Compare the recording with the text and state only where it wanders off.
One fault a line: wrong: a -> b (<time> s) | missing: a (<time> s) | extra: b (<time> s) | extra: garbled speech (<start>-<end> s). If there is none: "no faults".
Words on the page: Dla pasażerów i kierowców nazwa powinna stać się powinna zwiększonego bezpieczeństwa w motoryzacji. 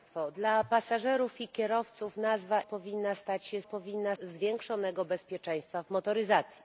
no faults